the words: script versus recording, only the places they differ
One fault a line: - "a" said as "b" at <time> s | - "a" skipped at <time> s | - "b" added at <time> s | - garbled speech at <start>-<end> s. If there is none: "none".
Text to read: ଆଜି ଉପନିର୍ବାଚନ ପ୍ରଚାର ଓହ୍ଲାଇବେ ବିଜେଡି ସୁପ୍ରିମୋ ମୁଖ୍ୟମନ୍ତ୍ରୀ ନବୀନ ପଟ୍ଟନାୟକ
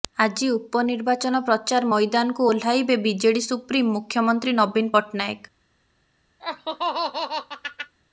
- "ମଇଦାନକୁ" added at 1.9 s